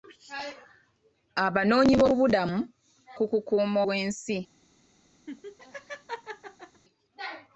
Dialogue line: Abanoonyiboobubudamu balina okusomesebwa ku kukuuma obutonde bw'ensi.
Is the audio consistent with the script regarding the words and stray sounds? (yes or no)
no